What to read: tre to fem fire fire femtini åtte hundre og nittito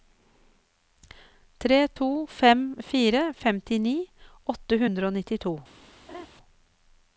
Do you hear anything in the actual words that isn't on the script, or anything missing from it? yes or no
yes